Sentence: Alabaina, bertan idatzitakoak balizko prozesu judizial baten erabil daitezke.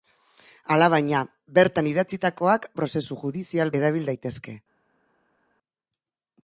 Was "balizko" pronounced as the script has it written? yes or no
no